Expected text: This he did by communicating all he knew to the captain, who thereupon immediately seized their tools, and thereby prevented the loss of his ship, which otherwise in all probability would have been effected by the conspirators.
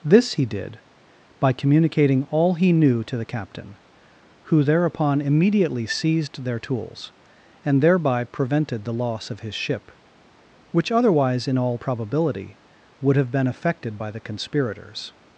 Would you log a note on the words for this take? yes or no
no